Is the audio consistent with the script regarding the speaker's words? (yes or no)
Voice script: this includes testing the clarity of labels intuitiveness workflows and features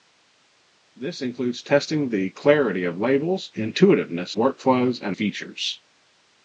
yes